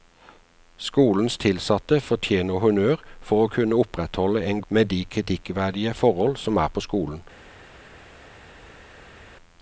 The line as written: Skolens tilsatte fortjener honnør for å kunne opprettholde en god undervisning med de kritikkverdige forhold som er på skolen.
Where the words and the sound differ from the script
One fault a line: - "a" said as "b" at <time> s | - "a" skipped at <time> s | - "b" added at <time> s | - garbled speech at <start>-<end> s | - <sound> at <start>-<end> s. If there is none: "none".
- "god undervisning" skipped at 4.6 s